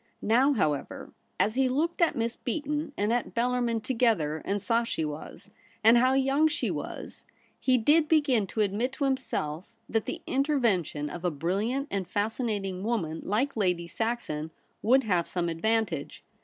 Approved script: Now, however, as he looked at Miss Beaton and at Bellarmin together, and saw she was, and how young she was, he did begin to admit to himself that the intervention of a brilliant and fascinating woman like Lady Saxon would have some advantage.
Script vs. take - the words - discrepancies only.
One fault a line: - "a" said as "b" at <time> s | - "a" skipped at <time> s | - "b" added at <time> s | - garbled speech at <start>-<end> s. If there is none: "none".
none